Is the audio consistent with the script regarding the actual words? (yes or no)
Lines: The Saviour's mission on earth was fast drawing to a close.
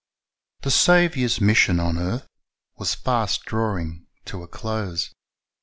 yes